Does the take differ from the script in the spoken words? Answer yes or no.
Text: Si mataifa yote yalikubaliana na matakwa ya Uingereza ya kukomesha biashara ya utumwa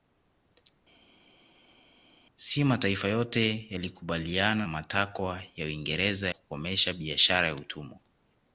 yes